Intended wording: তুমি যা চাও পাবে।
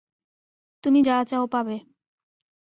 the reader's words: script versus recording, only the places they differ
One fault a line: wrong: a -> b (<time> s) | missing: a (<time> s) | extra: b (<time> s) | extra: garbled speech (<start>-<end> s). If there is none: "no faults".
no faults